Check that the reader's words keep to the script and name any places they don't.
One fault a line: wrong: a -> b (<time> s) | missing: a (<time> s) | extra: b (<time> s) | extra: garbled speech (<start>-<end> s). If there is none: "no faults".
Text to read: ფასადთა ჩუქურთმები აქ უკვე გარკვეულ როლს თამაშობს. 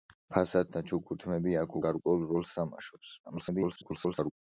missing: უკვე (1.8 s)
extra: garbled speech (3.2-4.3 s)